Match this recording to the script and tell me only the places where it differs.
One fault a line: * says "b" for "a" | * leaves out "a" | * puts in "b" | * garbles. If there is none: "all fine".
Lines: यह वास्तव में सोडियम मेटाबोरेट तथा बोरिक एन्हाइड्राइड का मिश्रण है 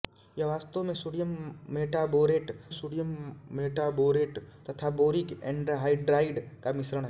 * puts in "सोडियम मेटाबोरेट"